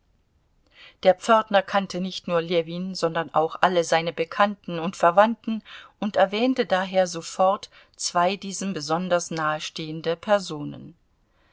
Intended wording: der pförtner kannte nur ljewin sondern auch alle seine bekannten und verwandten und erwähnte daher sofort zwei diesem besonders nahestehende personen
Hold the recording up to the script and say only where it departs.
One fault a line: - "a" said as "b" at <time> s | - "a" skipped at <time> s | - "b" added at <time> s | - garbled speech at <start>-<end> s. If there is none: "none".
- "nicht" added at 2.0 s